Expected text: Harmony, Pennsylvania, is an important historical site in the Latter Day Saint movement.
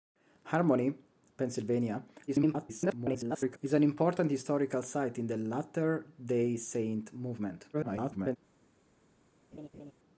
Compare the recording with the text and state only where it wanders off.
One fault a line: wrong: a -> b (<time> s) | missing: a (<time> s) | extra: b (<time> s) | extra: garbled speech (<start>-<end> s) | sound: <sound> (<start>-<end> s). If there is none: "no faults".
extra: garbled speech (2.3-3.6 s)
extra: garbled speech (7.7-8.4 s)
sound: laugh (9.5-9.9 s)